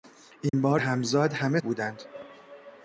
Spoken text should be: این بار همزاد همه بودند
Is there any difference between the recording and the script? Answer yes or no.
no